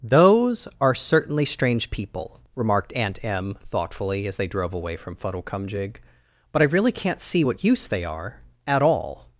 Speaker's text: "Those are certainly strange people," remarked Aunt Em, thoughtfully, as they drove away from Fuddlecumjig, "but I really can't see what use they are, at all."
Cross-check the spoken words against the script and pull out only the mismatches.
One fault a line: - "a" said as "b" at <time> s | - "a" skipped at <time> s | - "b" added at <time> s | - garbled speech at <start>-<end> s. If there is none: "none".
none